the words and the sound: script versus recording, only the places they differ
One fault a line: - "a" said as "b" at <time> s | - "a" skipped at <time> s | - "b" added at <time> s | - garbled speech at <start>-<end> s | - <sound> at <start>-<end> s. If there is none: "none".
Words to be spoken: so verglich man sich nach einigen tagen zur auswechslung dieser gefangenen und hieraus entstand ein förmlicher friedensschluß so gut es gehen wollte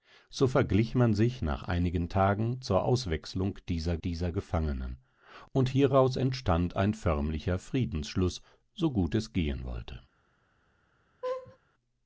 - "dieser" added at 4.0 s
- laugh at 11.2-11.6 s